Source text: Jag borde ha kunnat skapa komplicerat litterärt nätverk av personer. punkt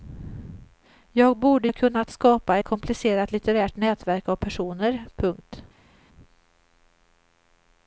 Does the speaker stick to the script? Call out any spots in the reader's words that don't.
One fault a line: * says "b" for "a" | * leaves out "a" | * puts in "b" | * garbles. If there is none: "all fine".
all fine